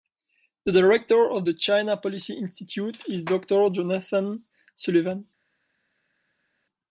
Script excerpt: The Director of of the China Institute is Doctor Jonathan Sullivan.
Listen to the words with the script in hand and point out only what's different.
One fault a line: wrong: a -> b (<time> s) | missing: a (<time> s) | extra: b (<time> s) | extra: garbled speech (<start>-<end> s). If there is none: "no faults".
missing: of (1.4 s)
extra: Policy (2.0 s)